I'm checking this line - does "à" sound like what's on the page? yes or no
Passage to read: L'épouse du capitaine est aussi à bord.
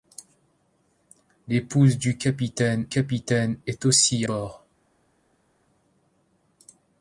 no